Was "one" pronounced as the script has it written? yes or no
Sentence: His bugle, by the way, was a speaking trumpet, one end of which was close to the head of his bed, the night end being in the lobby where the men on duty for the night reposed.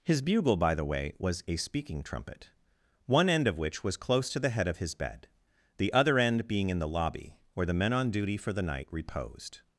yes